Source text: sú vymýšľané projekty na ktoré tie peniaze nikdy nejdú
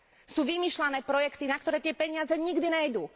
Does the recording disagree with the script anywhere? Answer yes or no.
no